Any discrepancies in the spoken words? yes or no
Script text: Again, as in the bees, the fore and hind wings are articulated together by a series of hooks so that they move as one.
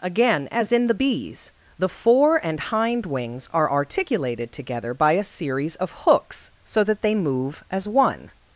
no